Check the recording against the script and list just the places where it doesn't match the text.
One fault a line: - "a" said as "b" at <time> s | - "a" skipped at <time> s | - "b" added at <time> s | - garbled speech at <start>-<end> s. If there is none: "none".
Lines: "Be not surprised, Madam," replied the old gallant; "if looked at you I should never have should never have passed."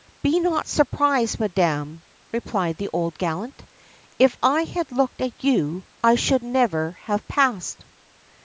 - "I had" added at 4.4 s
- "should never have" skipped at 7.2 s